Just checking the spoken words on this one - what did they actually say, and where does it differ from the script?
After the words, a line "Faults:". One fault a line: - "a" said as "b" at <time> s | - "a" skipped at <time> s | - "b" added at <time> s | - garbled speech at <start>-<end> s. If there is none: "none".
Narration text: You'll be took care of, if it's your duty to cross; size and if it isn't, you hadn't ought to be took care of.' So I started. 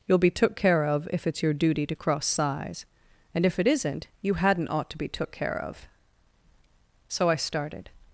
You'll be took care of, if it's your duty to cross; size and if it isn't, you hadn't ought to be took care of.' So I started.
Faults:
none